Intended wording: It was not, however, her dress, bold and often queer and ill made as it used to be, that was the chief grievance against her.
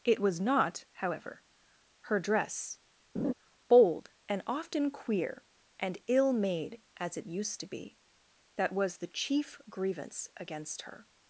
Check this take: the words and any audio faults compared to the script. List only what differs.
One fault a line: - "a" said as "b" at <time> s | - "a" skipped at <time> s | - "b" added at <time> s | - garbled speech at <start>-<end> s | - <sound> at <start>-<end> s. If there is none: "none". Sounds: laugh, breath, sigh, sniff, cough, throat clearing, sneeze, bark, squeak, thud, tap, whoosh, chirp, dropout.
- laugh at 3.2-3.3 s